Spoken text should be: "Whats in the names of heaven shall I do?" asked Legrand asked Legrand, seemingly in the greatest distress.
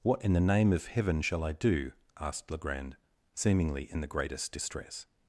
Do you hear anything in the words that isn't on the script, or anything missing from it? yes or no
yes